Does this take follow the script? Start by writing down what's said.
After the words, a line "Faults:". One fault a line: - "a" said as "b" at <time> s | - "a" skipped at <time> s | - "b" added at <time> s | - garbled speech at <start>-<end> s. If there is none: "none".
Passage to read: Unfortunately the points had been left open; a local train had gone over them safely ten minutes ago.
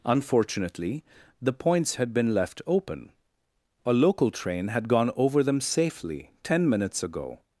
Unfortunately the points had been left open; a local train had gone over them safely ten minutes ago.
Faults:
none